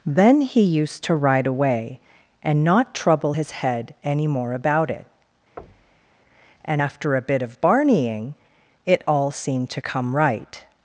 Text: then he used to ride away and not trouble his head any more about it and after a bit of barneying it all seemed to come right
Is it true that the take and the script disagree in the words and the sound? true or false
true